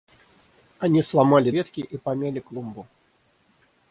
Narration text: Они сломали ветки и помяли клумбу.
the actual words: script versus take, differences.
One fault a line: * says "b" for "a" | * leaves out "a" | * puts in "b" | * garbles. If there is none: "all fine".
all fine